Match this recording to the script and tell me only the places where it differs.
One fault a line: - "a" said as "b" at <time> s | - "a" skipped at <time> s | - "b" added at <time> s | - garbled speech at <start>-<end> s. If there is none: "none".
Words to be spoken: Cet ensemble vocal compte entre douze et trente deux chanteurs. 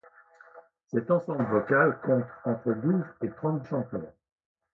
- "deux" skipped at 3.6 s